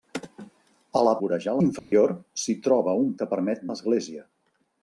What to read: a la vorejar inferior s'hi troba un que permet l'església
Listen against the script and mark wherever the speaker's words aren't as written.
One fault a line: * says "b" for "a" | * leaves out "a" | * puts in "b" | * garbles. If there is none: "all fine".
all fine